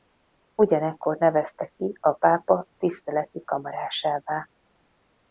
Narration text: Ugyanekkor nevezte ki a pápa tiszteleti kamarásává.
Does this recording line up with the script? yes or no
yes